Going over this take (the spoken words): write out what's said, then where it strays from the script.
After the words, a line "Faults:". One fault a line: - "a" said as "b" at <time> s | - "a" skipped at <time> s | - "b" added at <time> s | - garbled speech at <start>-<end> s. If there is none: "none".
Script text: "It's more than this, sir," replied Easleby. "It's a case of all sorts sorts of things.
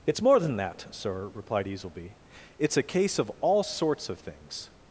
"It's more than that, sir," replied Easleby. "It's a case of all sorts of things.
Faults:
- "this" said as "that" at 0.6 s
- "sorts" skipped at 4.1 s